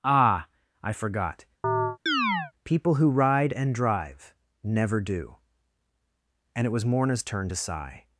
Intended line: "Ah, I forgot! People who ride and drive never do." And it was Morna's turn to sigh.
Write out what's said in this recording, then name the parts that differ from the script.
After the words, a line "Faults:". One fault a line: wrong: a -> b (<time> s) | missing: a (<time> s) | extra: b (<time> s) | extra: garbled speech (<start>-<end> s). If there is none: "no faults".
"Ah, I forgot! People who ride and drive never do." And it was Morna's turn to sigh.
Faults:
no faults